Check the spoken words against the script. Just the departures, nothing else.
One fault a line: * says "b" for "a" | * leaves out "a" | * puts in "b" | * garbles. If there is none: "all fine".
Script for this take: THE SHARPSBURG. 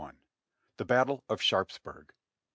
* puts in "BATTLE OF"